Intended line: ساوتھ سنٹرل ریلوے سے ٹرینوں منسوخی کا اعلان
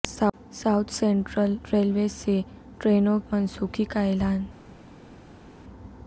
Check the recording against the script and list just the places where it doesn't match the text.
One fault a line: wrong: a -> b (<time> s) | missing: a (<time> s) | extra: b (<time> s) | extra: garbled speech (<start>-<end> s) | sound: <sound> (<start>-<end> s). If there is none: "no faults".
no faults